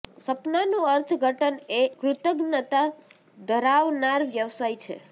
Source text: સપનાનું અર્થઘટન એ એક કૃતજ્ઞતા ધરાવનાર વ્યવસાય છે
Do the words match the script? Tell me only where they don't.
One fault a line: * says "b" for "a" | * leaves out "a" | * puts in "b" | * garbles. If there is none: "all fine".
* leaves out "એક"